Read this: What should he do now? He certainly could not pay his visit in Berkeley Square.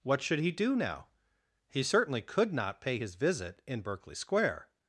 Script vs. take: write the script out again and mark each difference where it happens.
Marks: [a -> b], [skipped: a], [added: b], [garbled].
What should he do now? He certainly could not pay his visit in Berkeley Square.